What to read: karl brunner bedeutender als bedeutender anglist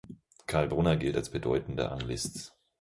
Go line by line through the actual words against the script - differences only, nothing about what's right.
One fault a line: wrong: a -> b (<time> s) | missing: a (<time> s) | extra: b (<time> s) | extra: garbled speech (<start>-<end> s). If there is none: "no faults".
wrong: bedeutender -> gilt (1.0 s)